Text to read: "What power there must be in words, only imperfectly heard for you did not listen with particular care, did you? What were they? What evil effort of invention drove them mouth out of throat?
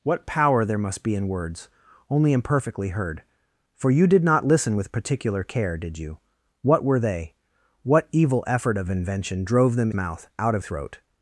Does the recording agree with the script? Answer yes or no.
yes